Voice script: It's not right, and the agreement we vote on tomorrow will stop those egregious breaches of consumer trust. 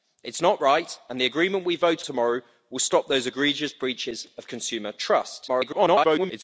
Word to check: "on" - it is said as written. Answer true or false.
false